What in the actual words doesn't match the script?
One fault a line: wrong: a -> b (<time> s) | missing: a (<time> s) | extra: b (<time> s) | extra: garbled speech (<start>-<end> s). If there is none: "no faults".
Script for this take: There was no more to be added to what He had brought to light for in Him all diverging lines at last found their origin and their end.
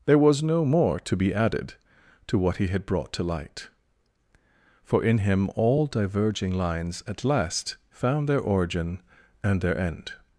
no faults